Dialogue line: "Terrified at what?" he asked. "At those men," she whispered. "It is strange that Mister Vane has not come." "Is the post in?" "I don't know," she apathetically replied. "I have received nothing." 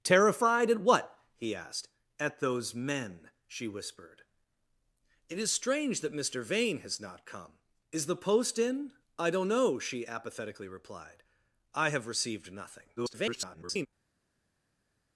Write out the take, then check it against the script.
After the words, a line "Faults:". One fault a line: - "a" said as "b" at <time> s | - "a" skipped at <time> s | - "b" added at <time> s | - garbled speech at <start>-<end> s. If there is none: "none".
"Terrified at what?" he asked. "At those men," she whispered. "It is strange that Mister Vane has not come." "Is the post in?" "I don't know," she apathetically replied. "I have received nothing." [garbled]
Faults:
- garbled speech at 13.0-13.9 s